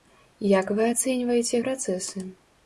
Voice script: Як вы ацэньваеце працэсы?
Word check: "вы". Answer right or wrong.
right